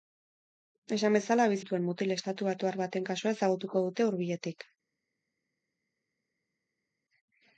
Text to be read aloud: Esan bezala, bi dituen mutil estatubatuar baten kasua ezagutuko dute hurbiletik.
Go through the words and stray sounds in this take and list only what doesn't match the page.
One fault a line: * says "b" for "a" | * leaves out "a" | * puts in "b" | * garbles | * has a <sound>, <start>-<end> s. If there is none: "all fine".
all fine